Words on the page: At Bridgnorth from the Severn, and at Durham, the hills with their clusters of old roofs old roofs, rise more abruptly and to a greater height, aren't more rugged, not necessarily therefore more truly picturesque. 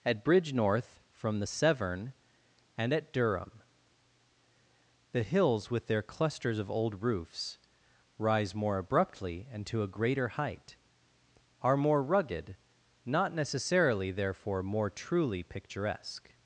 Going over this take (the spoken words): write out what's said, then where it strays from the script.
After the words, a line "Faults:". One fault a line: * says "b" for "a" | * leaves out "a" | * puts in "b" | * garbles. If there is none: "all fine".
At Bridgnorth from the Severn, and at Durham, the hills with their clusters of old roofs, rise more abruptly and to a greater height, are more rugged, not necessarily therefore more truly picturesque.
Faults:
* leaves out "old roofs"
* says "are" for "aren't"